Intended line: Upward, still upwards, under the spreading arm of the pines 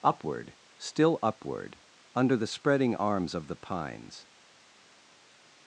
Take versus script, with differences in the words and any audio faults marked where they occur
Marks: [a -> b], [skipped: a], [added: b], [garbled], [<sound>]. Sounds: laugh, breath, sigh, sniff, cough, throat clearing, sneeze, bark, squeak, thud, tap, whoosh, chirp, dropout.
Upward, still [upwards, -> upward] under the spreading [arm -> arms] of the pines